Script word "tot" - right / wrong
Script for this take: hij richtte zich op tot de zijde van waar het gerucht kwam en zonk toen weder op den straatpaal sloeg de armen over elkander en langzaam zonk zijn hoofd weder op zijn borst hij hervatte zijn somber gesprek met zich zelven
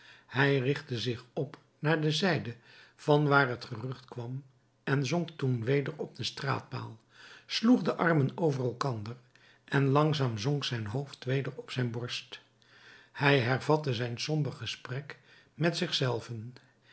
wrong